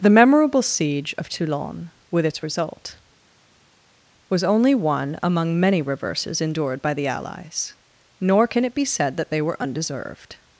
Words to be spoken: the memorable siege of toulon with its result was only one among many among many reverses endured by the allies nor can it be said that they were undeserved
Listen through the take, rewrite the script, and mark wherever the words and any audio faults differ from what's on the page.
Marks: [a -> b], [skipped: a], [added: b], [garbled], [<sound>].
the memorable siege of toulon with its result was only one among many [skipped: among many] reverses endured by the allies nor can it be said that they were undeserved